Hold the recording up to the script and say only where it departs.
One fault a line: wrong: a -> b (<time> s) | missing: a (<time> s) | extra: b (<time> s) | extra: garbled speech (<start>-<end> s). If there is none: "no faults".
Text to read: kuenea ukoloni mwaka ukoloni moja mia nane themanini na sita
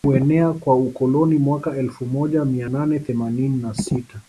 extra: kwa (0.5 s)
wrong: ukoloni -> elfu (1.8 s)